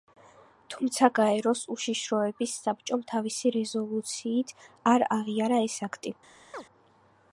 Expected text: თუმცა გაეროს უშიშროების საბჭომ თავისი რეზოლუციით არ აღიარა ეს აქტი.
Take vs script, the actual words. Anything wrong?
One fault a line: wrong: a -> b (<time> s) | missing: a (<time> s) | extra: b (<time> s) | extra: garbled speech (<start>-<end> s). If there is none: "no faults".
no faults